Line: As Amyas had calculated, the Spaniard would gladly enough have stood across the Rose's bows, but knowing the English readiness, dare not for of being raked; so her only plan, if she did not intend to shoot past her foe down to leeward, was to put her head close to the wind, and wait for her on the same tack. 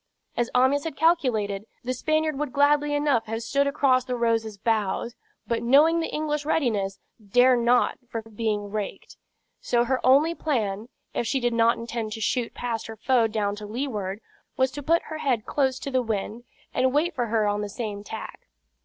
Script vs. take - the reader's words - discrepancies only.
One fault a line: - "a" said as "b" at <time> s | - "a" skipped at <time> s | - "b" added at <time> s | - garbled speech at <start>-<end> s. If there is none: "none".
none